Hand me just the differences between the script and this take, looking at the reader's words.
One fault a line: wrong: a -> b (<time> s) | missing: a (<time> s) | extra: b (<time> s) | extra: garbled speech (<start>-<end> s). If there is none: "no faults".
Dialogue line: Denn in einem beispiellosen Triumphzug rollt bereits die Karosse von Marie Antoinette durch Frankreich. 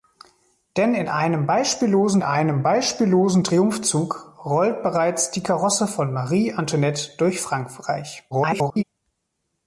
extra: einem beispiellosen (2.2 s)
extra: garbled speech (8.3-8.8 s)